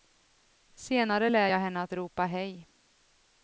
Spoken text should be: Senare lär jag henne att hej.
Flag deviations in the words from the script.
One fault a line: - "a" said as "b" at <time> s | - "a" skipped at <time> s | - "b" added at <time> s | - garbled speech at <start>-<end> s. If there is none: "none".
- "ropa" added at 1.9 s